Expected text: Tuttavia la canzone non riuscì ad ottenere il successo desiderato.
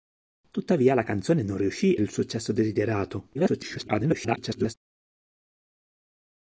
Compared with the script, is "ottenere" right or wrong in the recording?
wrong